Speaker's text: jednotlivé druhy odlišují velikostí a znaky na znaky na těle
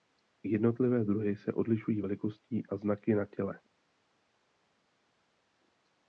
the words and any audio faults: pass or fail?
fail